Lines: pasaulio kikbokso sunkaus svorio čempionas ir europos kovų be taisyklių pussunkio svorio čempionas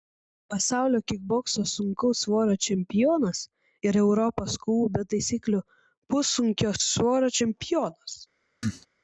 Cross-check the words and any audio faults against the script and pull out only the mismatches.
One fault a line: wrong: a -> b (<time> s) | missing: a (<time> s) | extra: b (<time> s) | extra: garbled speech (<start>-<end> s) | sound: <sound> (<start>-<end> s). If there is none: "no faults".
sound: cough (8.6-8.9 s)